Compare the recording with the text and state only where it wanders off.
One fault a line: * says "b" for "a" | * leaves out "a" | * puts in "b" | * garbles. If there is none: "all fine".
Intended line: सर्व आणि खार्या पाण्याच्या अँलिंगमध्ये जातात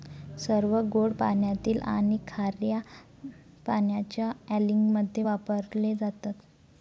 * puts in "गोड पाण्यातील"
* puts in "वापरले"